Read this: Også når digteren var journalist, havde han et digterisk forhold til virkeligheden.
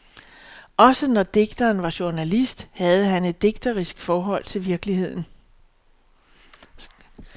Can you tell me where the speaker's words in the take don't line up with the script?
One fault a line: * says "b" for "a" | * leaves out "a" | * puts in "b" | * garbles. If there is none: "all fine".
all fine